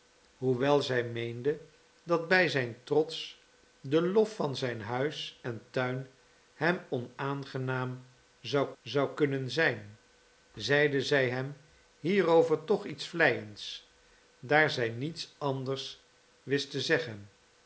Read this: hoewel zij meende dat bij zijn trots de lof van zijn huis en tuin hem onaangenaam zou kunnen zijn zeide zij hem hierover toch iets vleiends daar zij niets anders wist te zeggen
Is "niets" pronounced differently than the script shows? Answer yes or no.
no